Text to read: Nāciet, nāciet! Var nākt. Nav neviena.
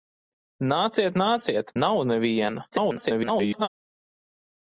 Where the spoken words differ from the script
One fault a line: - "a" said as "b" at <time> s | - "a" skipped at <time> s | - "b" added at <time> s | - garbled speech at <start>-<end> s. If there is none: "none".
- "Var nākt" skipped at 1.7 s
- garbled speech at 2.7-3.7 s